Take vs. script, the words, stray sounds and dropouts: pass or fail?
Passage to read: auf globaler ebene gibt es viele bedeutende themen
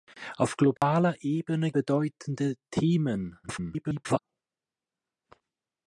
fail